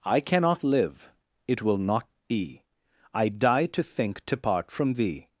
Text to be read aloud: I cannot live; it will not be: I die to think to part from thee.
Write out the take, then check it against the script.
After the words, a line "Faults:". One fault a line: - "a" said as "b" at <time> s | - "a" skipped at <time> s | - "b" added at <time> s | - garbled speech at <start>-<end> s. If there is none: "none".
I cannot live; it will not be: I die to think to part from thee.
Faults:
none